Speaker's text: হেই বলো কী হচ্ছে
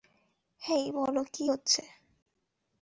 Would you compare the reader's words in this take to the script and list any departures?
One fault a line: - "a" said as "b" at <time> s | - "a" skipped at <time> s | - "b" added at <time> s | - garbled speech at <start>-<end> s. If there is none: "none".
none